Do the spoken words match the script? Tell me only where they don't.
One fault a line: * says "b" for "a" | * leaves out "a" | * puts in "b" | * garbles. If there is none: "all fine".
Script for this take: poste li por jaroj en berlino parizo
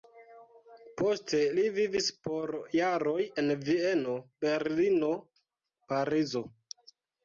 * puts in "vivis"
* puts in "vieno"